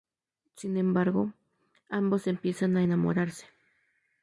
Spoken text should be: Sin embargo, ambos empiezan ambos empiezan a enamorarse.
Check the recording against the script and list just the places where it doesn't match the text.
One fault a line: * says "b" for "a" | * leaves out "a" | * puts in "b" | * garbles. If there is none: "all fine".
* leaves out "ambos empiezan"